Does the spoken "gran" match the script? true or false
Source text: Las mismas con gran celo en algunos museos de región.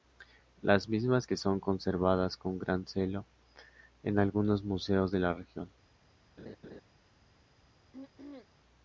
true